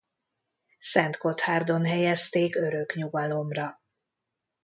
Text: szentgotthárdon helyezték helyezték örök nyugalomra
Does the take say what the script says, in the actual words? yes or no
no